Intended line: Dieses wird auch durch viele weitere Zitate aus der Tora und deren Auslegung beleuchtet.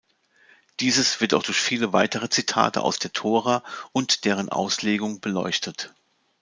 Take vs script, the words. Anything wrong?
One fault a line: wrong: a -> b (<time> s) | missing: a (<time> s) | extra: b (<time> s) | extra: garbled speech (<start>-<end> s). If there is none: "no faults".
no faults